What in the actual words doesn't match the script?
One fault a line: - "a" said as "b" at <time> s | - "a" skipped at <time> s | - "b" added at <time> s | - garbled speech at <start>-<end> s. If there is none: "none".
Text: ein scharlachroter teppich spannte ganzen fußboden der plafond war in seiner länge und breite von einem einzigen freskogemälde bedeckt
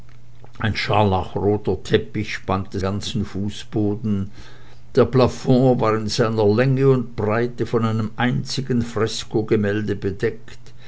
none